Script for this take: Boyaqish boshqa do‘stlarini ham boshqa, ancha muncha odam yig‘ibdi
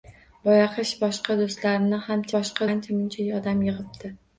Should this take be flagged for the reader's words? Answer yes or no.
no